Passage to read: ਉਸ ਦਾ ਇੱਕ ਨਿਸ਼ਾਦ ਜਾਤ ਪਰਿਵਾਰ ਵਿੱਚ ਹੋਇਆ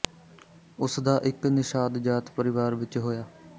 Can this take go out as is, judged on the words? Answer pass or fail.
pass